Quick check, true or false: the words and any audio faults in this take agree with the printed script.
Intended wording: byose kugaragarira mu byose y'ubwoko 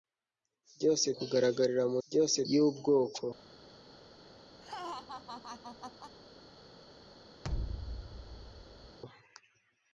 false